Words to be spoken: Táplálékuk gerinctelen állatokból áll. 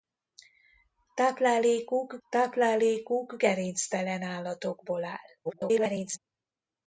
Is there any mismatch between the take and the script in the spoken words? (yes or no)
yes